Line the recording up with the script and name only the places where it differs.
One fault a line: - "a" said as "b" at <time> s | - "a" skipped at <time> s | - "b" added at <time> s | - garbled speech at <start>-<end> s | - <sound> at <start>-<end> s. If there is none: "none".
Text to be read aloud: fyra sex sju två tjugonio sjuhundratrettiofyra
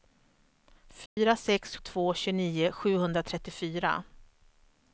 - dropout at 1.1-1.2 s
- "sju" skipped at 1.8 s